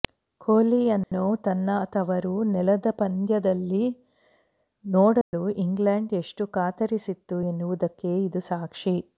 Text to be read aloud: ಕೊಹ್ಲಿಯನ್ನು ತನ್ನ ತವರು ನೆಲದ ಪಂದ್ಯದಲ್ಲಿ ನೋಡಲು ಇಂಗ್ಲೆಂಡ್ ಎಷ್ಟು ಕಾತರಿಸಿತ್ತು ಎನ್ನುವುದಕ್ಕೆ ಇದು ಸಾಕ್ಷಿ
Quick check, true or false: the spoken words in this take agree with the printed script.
true